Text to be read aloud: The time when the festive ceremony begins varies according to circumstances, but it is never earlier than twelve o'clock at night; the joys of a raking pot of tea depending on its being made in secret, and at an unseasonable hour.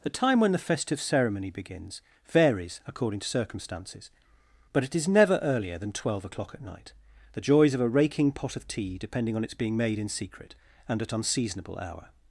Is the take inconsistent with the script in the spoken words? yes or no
yes